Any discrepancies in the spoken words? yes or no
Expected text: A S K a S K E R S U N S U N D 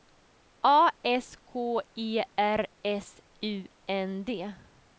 yes